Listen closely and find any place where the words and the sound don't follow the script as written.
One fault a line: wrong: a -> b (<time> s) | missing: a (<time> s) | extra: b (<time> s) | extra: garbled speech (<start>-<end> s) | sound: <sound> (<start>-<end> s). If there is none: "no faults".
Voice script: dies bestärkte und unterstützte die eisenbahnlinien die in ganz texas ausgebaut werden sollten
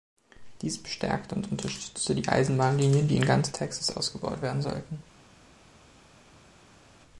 no faults